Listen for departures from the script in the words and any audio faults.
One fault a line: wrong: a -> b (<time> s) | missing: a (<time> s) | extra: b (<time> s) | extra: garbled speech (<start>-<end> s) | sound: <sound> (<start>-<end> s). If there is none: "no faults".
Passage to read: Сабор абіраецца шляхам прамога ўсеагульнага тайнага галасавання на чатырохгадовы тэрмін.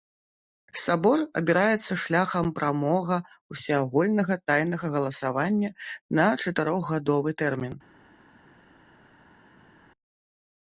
no faults